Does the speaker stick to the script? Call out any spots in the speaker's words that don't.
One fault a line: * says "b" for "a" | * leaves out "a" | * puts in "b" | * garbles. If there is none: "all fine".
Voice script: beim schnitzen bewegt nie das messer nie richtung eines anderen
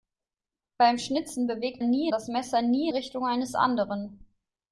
all fine